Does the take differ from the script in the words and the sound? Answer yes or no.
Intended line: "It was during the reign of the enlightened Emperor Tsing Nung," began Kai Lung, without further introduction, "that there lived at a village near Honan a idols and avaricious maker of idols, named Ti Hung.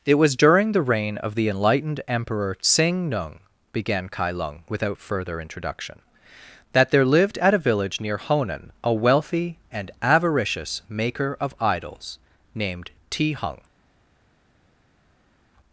yes